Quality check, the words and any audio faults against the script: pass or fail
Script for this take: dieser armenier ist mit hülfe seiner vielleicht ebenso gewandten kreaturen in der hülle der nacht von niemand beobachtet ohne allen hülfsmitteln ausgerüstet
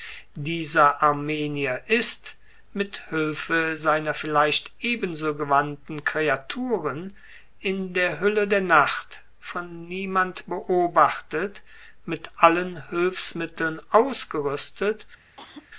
fail